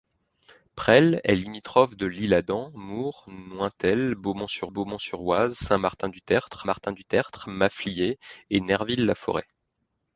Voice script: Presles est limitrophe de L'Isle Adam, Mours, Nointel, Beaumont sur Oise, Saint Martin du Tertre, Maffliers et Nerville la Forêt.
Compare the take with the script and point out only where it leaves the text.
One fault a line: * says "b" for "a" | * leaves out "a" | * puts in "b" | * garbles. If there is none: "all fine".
* puts in "Beaumont sur"
* puts in "Martin du Tertre"